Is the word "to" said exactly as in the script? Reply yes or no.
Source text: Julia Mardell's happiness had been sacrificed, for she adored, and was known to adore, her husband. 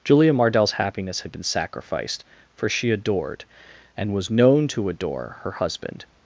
yes